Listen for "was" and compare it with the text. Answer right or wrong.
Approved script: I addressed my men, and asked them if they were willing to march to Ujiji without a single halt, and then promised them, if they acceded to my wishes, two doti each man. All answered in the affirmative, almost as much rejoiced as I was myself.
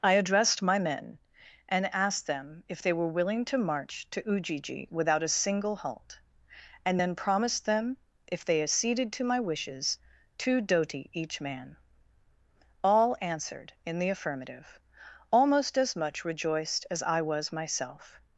right